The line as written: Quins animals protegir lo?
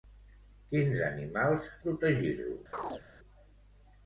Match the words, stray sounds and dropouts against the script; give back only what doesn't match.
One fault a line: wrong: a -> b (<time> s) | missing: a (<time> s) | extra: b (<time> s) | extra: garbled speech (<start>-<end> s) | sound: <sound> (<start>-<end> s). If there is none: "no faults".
sound: chirp (2.7-3.0 s)